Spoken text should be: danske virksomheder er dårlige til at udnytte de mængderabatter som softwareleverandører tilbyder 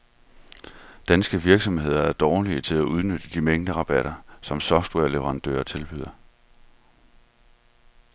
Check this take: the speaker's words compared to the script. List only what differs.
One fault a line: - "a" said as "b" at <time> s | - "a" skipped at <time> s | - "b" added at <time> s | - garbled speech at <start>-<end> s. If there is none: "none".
none